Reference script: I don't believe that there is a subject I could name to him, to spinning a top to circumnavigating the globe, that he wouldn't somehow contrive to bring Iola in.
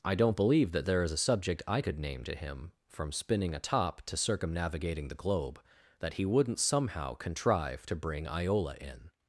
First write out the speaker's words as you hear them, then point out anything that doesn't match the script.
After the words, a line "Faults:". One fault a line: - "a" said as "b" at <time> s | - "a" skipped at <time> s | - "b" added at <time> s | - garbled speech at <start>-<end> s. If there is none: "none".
I don't believe that there is a subject I could name to him, from spinning a top to circumnavigating the globe, that he wouldn't somehow contrive to bring Iola in.
Faults:
- "to" said as "from" at 2.9 s